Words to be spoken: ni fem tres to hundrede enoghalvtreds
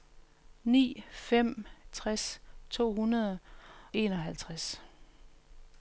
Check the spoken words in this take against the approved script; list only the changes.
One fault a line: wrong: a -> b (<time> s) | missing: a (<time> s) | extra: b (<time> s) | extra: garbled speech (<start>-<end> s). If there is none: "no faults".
no faults